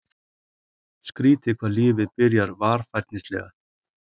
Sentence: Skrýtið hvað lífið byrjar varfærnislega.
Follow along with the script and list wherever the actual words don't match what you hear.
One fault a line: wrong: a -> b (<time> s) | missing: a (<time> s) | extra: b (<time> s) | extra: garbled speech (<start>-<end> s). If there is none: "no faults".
no faults